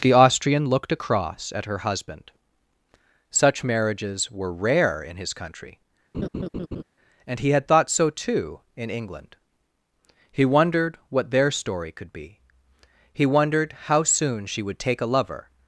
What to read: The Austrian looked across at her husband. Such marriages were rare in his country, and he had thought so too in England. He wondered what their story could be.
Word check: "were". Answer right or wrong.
right